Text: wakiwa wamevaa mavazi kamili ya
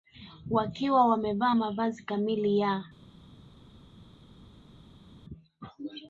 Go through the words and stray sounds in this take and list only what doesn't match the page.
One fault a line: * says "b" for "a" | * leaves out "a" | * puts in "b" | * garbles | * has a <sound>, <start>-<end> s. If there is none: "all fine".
all fine